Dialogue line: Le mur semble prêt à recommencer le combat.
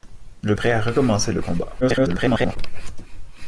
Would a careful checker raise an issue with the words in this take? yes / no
yes